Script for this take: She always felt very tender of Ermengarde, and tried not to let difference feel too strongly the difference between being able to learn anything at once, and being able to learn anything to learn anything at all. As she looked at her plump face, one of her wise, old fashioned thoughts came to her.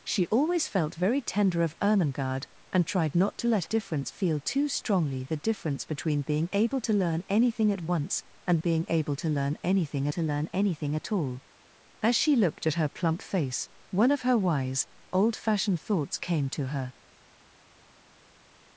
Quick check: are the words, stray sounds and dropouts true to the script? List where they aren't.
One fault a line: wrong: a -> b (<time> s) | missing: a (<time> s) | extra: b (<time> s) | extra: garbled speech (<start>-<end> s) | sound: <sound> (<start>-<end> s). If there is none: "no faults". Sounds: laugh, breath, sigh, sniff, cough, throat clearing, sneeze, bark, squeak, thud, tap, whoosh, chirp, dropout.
no faults